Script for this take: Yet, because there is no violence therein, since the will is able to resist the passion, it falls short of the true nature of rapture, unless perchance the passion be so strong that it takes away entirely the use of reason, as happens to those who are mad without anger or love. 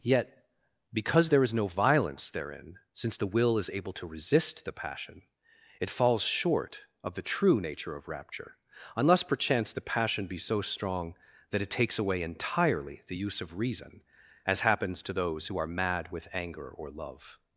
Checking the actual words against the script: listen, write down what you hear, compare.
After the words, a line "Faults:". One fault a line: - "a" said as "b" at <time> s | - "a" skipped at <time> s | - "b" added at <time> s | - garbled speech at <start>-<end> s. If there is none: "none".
Yet, because there is no violence therein, since the will is able to resist the passion, it falls short of the true nature of rapture, unless perchance the passion be so strong that it takes away entirely the use of reason, as happens to those who are mad with anger or love.
Faults:
- "without" said as "with" at 16.1 s